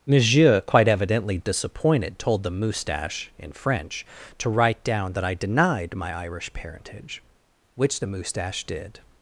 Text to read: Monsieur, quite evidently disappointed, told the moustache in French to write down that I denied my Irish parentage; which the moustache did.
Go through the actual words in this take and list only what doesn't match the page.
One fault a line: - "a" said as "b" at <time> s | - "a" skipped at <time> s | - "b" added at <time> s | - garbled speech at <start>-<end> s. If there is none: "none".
none